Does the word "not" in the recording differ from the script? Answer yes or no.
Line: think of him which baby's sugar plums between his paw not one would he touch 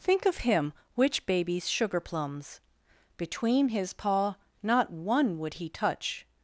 no